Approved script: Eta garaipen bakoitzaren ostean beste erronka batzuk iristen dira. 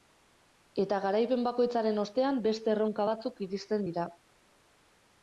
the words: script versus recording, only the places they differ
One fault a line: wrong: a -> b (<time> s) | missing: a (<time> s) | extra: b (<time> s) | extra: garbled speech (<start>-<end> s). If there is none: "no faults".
no faults